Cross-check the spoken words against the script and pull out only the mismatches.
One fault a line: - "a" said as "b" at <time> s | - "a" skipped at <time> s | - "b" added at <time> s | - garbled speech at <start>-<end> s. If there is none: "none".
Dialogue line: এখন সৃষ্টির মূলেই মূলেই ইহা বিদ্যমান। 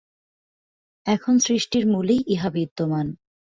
- "মূলেই" skipped at 2.2 s